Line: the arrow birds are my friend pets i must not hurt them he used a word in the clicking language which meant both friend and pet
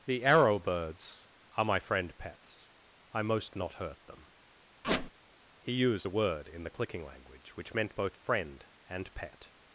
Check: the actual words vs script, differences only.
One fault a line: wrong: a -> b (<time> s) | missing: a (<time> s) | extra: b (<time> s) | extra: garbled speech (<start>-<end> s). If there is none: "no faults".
wrong: must -> most (3.2 s)